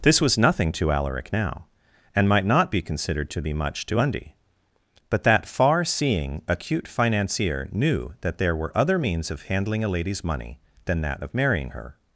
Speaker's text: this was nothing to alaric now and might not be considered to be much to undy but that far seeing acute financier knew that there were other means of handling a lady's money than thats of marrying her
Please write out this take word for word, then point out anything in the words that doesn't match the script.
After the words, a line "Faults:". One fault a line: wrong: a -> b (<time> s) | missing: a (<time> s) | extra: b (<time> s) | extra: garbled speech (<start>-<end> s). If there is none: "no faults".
this was nothing to alaric now and might not be considered to be much to undy but that far seeing acute financier knew that there were other means of handling a lady's money than that of marrying her
Faults:
wrong: thats -> that (11.0 s)